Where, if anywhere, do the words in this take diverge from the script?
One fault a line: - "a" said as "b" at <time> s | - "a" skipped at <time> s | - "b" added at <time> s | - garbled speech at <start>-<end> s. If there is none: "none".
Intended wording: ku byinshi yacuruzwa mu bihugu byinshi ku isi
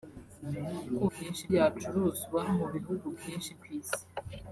none